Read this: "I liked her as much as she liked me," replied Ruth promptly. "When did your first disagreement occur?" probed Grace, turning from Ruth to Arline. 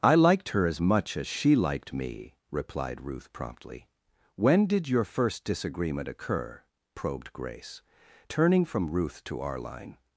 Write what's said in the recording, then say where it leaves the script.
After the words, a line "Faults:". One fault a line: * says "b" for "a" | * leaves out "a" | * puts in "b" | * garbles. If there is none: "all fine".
"I liked her as much as she liked me," replied Ruth promptly. "When did your first disagreement occur?" probed Grace, turning from Ruth to Arline.
Faults:
all fine